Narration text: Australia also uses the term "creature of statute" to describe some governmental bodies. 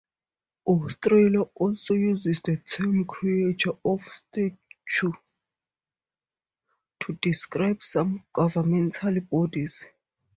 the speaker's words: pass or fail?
pass